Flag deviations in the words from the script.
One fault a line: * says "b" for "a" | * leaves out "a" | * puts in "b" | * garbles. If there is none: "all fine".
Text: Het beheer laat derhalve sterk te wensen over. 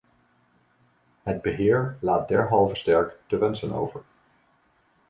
all fine